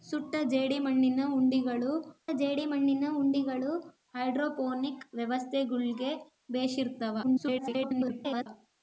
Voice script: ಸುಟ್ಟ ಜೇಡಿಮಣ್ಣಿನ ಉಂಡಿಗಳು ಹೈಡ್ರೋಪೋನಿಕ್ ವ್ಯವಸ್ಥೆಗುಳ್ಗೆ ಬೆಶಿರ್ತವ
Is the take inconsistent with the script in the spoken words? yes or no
yes